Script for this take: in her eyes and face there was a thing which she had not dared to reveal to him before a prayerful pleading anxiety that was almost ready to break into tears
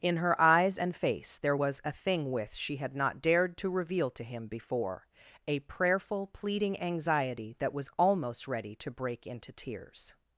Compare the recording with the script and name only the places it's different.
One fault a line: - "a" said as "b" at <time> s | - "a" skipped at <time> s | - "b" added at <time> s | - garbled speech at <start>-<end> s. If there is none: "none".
- "which" said as "with" at 2.3 s